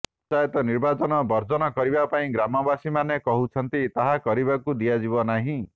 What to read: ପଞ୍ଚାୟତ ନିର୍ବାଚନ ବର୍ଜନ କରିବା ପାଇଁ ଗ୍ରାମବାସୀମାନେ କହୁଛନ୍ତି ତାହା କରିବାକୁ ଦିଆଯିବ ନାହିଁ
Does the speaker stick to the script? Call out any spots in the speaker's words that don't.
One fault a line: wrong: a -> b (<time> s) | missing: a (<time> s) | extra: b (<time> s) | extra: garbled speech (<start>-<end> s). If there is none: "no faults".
no faults